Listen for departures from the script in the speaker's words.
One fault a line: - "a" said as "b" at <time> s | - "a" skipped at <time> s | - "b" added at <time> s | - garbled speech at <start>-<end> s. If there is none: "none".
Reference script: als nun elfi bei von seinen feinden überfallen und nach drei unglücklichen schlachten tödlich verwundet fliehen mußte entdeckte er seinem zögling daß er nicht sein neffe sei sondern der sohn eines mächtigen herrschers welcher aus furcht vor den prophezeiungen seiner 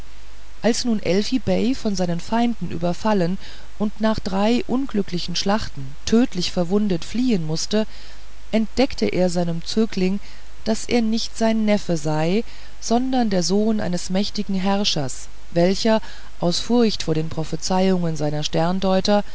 none